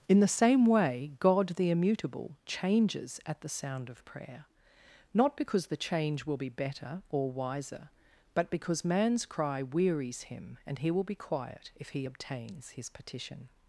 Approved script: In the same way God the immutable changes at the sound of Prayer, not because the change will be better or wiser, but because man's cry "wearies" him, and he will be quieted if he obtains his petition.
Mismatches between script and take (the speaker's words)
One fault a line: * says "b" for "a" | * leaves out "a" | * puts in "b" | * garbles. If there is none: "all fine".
* says "quiet" for "quieted"